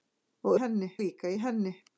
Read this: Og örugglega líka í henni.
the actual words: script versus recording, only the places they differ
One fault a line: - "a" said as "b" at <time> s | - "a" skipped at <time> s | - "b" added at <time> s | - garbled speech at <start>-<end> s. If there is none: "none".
- "örugglega" said as "henni" at 0.6 s